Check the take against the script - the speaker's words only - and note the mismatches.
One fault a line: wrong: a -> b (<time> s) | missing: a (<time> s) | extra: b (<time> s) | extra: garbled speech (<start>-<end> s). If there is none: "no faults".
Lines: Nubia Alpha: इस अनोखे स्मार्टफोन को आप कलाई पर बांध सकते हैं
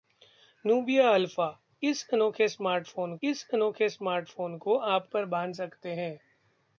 extra: इस अनोखे स्मार्टफोन (3.2 s)
missing: कलाई (5.1 s)